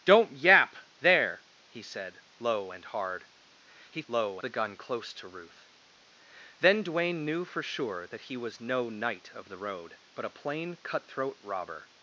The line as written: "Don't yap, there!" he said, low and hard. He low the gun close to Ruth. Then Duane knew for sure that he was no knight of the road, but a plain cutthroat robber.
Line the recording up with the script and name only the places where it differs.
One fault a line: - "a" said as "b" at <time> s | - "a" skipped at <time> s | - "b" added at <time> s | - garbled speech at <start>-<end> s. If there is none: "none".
none